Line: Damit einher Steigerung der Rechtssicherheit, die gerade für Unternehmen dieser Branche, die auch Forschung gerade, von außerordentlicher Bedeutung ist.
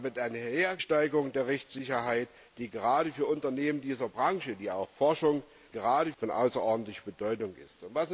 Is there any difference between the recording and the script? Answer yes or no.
no